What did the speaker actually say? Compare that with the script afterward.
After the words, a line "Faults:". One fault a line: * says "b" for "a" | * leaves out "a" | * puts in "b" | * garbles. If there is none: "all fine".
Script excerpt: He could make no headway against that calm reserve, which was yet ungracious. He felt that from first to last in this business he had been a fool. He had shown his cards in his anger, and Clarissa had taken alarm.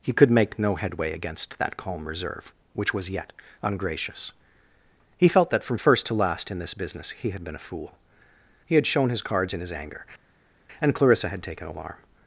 He could make no headway against that calm reserve, which was yet ungracious. He felt that from first to last in this business he had been a fool. He had shown his cards in his anger, and Clarissa had taken alarm.
Faults:
all fine